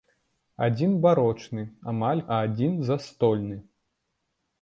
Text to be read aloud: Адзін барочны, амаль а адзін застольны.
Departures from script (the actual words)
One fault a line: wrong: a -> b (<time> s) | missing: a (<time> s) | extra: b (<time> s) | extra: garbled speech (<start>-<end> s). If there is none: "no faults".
no faults